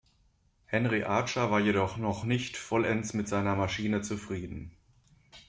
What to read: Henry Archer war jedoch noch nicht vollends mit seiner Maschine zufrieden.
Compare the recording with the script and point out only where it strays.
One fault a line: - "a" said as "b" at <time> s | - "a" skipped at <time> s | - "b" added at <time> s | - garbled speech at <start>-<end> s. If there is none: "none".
none